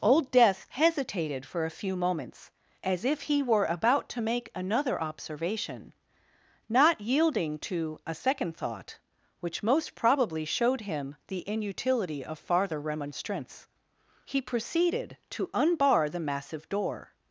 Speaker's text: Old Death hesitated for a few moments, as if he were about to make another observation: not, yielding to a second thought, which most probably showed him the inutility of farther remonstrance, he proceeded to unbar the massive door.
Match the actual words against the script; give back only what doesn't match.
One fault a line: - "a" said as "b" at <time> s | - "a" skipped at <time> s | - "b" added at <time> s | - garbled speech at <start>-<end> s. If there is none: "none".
none